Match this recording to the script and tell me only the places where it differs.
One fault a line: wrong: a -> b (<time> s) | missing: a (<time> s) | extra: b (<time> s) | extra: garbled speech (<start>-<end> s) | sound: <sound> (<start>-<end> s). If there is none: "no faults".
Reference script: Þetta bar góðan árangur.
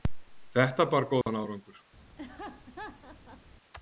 sound: dropout (1.2-1.3 s)
sound: laugh (2.2-3.4 s)